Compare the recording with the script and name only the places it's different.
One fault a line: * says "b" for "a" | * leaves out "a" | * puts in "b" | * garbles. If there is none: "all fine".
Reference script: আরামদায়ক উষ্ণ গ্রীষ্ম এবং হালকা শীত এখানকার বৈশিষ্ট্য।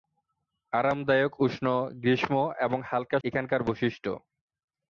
* leaves out "শীত"